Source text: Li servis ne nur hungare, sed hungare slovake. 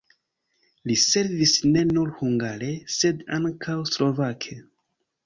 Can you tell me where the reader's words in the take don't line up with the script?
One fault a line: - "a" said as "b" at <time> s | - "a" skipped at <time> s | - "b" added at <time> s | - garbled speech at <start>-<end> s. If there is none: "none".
- "hungare" said as "ankaŭ" at 3.4 s